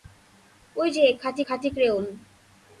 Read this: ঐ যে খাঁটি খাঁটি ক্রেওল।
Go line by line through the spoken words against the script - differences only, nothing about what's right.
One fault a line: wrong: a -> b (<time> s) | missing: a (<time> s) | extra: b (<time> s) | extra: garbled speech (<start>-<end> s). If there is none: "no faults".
no faults